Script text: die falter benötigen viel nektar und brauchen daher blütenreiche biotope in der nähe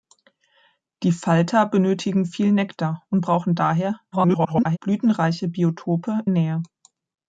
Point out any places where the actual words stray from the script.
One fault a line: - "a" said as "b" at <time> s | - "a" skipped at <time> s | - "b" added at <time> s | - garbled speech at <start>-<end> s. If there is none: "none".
- garbled speech at 4.1-4.8 s
- "in der" skipped at 6.2 s